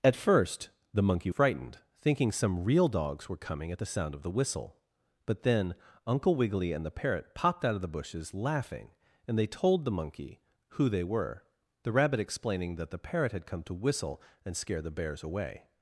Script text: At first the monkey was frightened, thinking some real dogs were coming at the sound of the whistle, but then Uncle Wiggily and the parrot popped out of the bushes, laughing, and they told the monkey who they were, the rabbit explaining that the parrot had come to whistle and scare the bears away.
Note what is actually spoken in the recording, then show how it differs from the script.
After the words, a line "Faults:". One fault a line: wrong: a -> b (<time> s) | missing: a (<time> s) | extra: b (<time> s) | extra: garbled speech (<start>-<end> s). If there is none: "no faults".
At first the monkey frightened, thinking some real dogs were coming at the sound of the whistle, but then Uncle Wiggily and the parrot popped out of the bushes, laughing, and they told the monkey who they were, the rabbit explaining that the parrot had come to whistle and scare the bears away.
Faults:
missing: was (1.3 s)